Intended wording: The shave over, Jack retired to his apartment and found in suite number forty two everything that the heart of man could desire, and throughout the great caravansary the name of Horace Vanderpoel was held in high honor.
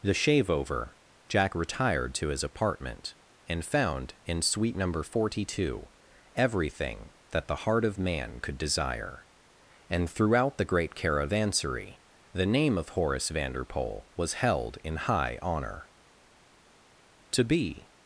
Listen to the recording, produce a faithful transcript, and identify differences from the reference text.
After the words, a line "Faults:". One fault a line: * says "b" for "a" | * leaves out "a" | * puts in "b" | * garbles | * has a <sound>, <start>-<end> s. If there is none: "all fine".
The shave over, Jack retired to his apartment and found in suite number forty two everything that the heart of man could desire, and throughout the great caravansary the name of Horace Vanderpoel was held in high honor. To be
Faults:
* puts in "To be"